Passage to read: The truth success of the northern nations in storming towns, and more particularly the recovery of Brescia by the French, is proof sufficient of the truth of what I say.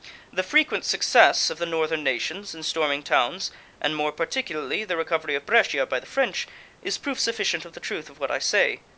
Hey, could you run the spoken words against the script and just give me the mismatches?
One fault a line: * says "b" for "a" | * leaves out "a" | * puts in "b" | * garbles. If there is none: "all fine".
* says "frequent" for "truth"